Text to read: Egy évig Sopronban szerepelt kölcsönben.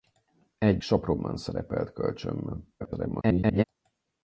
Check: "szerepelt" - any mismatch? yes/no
no